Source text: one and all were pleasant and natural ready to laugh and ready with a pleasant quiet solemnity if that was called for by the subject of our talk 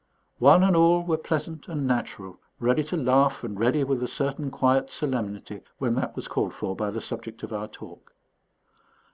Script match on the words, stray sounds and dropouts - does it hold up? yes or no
no